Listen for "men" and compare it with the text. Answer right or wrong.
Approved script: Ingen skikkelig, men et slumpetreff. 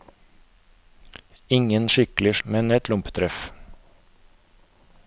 right